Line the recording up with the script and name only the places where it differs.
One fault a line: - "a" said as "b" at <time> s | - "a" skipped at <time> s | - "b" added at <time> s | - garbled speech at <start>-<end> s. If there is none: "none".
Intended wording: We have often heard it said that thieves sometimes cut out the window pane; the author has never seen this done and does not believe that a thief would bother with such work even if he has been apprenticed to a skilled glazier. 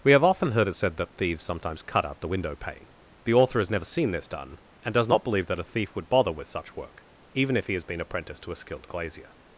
none